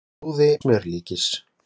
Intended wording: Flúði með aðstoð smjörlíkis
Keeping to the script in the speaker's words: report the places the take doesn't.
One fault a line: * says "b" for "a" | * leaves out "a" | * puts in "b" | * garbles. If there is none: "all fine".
* leaves out "með aðstoð"